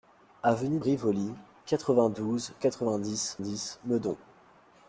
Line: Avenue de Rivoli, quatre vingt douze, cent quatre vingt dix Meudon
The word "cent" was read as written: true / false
false